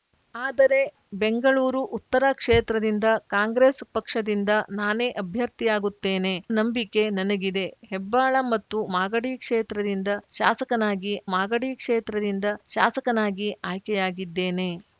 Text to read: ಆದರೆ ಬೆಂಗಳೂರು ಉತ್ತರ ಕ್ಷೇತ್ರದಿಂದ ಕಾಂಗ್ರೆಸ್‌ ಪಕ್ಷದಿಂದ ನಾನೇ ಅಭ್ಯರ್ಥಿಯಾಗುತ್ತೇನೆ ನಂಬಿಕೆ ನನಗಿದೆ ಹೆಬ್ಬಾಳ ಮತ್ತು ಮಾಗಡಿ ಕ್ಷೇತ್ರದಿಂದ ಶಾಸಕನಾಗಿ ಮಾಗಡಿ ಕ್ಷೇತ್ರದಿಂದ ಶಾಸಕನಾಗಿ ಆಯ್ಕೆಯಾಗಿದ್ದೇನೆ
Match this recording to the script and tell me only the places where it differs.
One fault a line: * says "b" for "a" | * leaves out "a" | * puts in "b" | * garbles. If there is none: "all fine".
all fine